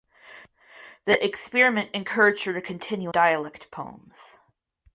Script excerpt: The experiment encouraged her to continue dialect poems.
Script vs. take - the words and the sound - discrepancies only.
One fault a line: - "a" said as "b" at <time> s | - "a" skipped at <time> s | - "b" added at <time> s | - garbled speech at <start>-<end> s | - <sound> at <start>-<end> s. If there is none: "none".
none